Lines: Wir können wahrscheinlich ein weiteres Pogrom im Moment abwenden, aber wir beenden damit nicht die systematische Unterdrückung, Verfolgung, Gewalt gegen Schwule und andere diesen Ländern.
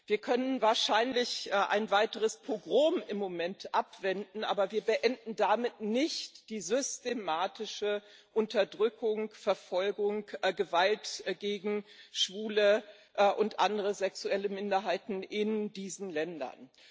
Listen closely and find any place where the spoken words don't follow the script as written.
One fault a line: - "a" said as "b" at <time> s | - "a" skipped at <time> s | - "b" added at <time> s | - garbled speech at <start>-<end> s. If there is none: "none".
- "sexuelle Minderheiten in" added at 13.9 s